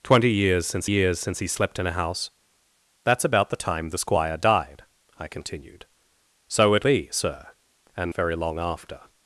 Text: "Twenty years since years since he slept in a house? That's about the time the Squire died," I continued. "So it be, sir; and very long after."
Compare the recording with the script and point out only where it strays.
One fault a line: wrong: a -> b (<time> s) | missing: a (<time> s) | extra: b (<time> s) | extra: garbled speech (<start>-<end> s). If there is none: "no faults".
no faults